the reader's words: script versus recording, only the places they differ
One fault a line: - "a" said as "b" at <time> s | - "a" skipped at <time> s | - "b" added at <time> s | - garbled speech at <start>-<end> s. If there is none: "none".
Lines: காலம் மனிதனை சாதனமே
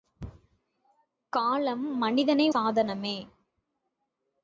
none